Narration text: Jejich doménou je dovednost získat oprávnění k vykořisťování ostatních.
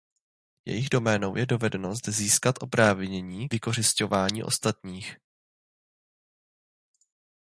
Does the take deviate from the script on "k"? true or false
true